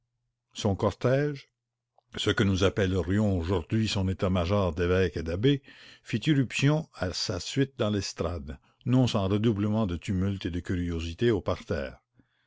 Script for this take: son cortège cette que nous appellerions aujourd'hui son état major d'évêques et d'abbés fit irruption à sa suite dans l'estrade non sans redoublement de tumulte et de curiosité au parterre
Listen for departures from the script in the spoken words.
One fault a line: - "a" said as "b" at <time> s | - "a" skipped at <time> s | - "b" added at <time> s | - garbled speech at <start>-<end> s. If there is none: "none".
- "cette" said as "ce" at 2.2 s